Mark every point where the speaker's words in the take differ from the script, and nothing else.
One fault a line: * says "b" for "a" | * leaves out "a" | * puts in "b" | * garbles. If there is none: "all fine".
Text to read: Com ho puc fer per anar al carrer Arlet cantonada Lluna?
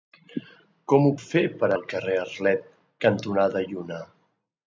* leaves out "puc"
* leaves out "anar"